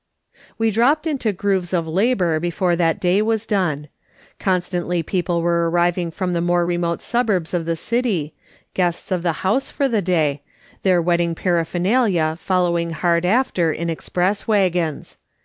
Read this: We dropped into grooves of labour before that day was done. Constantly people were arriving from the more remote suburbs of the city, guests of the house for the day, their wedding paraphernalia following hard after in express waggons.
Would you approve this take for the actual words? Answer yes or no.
yes